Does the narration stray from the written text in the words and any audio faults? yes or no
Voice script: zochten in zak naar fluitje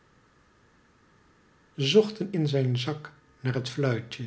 yes